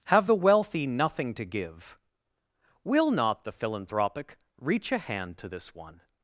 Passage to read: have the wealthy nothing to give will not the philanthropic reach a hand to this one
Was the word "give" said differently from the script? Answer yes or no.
no